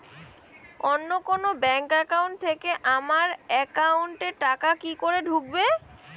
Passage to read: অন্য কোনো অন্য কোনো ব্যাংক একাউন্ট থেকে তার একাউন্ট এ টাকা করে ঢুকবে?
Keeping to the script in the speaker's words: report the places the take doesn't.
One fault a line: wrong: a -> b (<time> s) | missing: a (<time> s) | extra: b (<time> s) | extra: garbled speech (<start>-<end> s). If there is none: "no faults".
missing: অন্য কোনো (1.5 s)
wrong: তার -> আমার (3.0 s)
extra: কি (4.8 s)